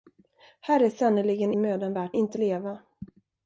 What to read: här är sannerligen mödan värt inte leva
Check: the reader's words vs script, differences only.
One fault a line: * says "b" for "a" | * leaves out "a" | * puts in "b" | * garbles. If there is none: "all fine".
all fine